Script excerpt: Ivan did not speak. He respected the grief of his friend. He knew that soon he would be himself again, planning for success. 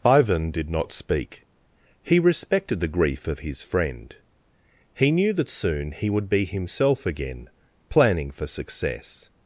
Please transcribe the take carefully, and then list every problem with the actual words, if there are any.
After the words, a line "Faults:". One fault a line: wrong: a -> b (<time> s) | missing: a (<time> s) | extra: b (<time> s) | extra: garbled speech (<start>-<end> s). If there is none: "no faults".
Ivan did not speak. He respected the grief of his friend. He knew that soon he would be himself again, planning for success.
Faults:
no faults